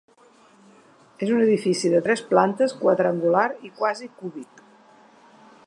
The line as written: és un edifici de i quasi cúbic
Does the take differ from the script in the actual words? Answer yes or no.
yes